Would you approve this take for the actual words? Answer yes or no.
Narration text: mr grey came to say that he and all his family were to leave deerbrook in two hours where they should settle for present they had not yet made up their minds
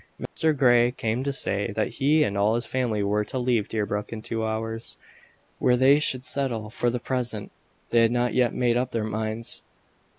no